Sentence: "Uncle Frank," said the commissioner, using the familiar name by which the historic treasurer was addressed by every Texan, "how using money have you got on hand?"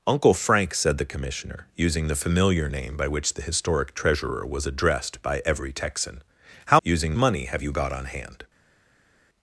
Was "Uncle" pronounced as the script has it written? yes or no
yes